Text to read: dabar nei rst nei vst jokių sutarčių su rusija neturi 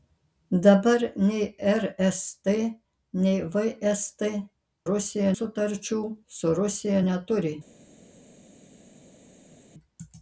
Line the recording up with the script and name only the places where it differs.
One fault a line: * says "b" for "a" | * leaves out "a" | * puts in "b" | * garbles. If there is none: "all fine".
* says "rusija" for "jokių"